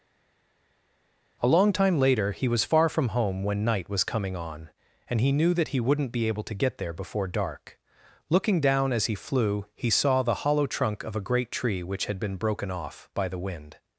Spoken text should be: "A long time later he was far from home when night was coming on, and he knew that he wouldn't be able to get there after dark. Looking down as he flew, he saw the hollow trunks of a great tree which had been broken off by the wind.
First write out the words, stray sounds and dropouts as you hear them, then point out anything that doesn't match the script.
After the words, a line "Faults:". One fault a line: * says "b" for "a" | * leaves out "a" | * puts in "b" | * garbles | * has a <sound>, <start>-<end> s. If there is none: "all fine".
"A long time later he was far from home when night was coming on, and he knew that he wouldn't be able to get there before dark. Looking down as he flew, he saw the hollow trunk of a great tree which had been broken off by the wind.
Faults:
* says "before" for "after"
* says "trunk" for "trunks"